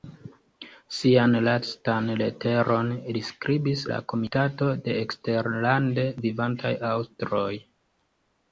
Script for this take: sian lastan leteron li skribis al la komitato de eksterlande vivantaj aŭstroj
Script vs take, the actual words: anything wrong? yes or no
yes